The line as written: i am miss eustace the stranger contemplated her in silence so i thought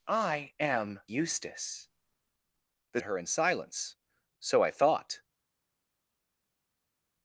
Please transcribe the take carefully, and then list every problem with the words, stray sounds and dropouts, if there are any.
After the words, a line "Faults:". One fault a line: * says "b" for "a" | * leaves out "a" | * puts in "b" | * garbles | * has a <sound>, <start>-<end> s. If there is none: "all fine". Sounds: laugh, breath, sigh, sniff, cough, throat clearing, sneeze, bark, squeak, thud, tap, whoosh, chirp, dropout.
i am eustace the her in silence so i thought
Faults:
* leaves out "miss"
* leaves out "stranger contemplated"